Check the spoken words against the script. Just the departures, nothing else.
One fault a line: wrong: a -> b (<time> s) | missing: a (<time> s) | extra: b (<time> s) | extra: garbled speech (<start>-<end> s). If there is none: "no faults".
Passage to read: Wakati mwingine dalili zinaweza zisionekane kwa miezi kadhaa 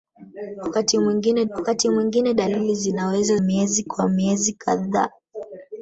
extra: wakati mwingine (1.5 s)
wrong: zisionekane -> miezi (3.4 s)